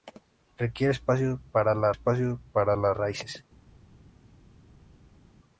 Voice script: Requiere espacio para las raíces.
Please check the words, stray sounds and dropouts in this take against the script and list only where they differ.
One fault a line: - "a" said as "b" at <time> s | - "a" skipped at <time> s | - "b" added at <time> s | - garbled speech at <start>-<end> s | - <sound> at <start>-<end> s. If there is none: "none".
- "espacio para las" added at 1.9 s